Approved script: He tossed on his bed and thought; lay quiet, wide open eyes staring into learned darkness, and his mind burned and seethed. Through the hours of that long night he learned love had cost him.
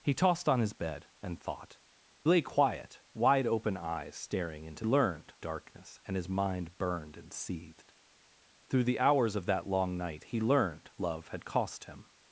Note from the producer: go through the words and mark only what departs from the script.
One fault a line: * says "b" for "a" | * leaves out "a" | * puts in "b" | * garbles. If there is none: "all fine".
all fine